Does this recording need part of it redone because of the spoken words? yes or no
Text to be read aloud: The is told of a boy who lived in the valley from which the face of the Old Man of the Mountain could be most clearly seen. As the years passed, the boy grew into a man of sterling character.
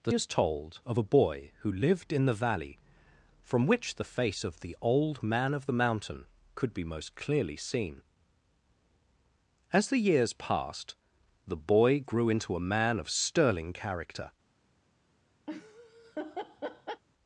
no